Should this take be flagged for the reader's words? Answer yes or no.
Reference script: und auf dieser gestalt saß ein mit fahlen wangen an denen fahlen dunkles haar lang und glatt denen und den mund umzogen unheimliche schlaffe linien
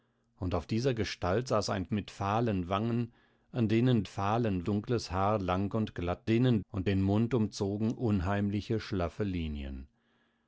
no